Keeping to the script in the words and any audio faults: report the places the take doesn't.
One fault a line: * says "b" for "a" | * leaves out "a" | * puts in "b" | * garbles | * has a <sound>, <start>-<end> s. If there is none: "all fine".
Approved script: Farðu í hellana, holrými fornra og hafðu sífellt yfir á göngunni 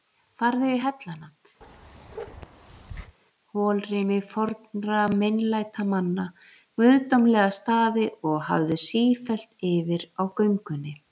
* has a bark, 1.6-3.2 s
* puts in "meinlætamanna guðdómlega staði"